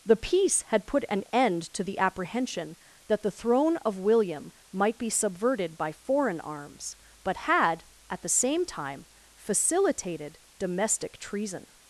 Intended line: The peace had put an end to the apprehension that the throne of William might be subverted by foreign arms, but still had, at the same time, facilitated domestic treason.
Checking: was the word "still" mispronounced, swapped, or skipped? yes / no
yes